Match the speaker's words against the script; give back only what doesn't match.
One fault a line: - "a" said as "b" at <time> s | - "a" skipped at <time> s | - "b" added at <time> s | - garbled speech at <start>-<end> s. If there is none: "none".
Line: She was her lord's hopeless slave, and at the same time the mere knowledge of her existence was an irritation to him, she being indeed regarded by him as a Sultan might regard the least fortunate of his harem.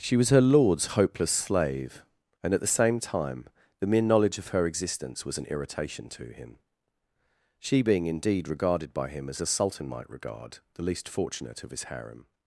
none